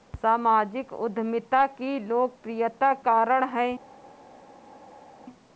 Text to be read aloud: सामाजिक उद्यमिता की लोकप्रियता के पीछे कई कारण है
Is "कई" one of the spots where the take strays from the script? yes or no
yes